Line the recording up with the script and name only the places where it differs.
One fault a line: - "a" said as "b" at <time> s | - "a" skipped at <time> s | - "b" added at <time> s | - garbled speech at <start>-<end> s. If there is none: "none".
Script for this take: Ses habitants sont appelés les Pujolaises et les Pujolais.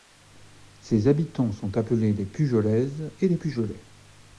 none